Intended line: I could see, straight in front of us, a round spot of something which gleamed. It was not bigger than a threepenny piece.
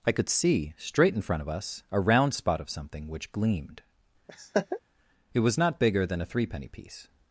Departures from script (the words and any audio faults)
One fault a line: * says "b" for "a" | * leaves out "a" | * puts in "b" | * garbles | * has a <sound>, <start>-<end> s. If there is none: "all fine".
* has a laugh, 4.3-4.8 s